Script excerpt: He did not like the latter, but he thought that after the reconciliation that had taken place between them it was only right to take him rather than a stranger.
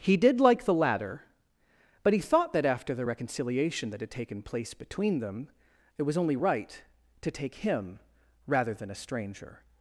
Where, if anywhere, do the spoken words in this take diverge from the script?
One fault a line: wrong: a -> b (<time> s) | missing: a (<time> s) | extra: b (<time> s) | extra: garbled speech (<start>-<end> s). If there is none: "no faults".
missing: not (0.4 s)